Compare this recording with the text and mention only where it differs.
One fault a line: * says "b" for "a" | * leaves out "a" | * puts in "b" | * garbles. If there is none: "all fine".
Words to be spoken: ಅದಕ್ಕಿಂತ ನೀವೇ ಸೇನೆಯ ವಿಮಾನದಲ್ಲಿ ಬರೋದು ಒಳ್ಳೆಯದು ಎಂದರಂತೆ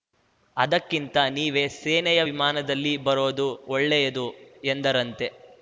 all fine